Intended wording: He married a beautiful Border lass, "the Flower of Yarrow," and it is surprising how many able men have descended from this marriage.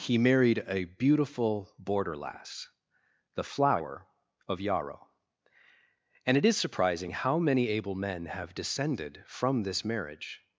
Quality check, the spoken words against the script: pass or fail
pass